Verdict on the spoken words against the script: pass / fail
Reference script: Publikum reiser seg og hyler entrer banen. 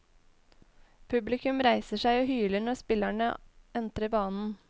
fail